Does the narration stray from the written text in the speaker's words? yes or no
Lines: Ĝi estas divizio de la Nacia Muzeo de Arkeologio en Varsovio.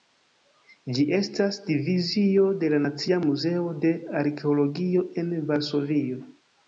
no